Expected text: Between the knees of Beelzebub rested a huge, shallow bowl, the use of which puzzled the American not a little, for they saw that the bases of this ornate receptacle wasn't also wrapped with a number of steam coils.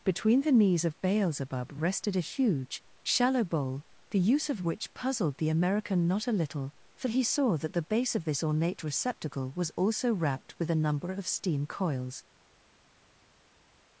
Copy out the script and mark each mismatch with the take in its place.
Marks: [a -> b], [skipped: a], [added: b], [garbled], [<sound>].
Between the knees of Beelzebub rested a huge, shallow bowl, the use of which puzzled the American not a little, for [they -> he] saw that the [bases -> base] of this ornate receptacle [wasn't -> was] also wrapped with a number of steam coils.